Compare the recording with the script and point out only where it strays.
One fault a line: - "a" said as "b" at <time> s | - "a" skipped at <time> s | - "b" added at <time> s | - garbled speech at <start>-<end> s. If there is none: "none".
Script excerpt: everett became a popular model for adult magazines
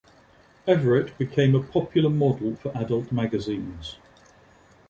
none